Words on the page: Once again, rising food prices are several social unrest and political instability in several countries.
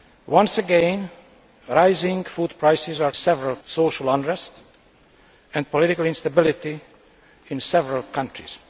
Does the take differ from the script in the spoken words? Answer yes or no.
no